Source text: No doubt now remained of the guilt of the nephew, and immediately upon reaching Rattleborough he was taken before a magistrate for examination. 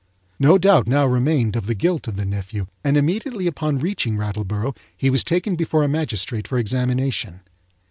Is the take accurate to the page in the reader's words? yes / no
yes